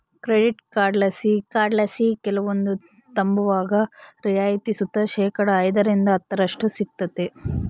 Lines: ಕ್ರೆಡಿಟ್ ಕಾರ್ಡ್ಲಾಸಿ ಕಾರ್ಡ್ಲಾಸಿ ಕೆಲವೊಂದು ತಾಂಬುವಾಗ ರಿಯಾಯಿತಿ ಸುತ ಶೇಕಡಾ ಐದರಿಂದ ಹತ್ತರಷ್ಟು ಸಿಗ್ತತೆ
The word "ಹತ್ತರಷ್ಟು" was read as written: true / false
true